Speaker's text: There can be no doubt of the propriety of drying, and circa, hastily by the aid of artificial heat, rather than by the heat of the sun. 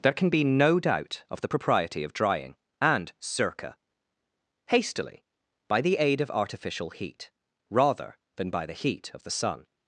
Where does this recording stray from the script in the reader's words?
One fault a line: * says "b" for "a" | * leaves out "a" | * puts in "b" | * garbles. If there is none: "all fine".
all fine